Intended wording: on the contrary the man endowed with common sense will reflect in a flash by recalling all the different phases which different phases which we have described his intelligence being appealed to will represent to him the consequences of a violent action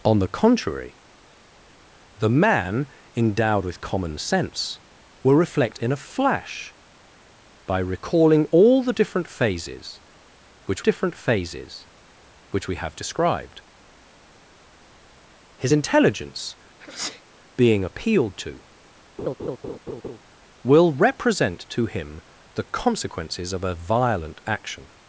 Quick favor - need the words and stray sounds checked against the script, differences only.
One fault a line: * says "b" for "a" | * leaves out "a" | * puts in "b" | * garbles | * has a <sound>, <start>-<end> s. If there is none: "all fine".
* has a sneeze, 16.8-17.2 s
* has a laugh, 19.2-20.2 s